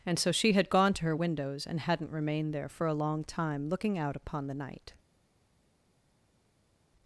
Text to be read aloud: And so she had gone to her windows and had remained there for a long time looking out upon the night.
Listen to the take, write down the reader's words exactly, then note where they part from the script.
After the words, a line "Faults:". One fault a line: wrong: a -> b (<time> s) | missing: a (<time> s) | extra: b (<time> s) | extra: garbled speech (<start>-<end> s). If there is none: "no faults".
And so she had gone to her windows and hadn't remained there for a long time looking out upon the night.
Faults:
wrong: had -> hadn't (1.8 s)